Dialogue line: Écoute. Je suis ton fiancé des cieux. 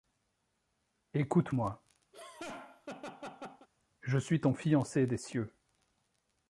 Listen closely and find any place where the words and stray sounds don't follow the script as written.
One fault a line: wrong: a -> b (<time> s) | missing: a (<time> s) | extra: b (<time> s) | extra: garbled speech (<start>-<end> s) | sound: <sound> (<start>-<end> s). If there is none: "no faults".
extra: moi (1.5 s)
sound: laugh (2.1-3.7 s)